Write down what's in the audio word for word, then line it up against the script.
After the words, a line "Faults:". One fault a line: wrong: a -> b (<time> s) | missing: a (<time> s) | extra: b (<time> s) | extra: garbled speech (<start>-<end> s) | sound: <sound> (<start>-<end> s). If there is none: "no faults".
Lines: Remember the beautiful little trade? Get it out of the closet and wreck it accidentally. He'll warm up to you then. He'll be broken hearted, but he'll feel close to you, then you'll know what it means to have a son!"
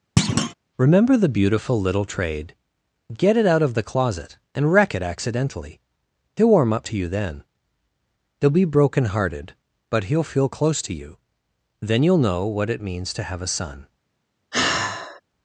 Remember the beautiful little trade? Get it out of the closet and wreck it accidentally. He'll warm up to you then. He'll be broken hearted, but he'll feel close to you, then you'll know what it means to have a son!"
Faults:
sound: thud (0.2-0.5 s)
sound: sigh (14.5-15.2 s)